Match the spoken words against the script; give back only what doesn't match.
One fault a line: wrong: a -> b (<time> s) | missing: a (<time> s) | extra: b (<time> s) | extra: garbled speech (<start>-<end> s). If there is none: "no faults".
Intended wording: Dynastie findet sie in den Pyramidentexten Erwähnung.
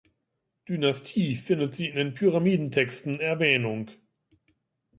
no faults